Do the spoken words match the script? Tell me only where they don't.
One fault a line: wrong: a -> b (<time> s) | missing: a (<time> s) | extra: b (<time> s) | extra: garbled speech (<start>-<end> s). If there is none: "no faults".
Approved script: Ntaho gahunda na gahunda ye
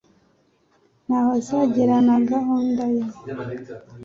wrong: gahunda -> azagera (1.4 s)